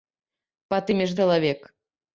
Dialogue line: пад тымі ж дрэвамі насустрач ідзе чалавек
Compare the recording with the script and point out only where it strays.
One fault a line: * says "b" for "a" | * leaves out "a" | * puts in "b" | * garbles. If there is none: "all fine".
* leaves out "дрэвамі насустрач ідзе"